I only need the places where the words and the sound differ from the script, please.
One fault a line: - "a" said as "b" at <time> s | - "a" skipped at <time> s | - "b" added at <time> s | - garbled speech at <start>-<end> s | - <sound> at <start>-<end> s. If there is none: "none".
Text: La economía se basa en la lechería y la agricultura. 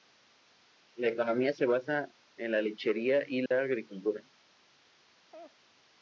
- dropout at 3.5-3.5 s
- laugh at 5.3-5.6 s